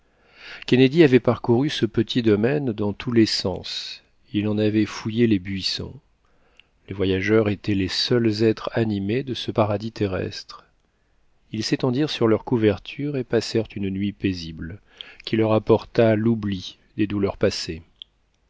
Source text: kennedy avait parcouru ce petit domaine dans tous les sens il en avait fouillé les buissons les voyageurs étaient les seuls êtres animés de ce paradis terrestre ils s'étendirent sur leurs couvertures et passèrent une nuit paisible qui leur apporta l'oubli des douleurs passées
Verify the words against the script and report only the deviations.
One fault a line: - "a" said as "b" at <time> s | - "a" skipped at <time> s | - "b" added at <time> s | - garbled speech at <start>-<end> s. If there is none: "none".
none